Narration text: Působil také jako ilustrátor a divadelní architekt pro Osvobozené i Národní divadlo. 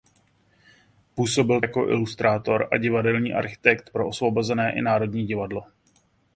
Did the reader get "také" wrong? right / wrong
wrong